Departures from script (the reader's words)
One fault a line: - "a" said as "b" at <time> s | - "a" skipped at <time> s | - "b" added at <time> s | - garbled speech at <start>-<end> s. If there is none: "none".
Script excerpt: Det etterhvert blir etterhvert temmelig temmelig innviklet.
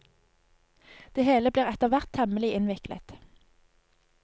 - "etterhvert" said as "hele" at 1.3 s
- "temmelig" skipped at 2.5 s